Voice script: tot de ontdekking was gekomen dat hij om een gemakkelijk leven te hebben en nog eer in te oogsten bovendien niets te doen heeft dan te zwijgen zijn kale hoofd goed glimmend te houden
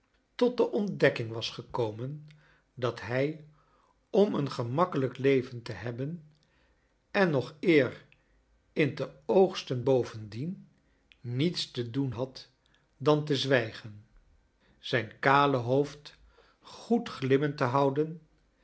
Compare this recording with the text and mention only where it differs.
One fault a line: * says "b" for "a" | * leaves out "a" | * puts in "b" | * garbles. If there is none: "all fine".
* says "had" for "heeft"